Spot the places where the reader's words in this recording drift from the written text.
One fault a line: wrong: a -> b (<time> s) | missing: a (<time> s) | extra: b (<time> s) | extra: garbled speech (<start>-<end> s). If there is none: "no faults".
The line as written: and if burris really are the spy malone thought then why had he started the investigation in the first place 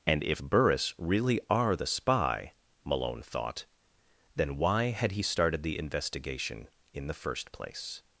no faults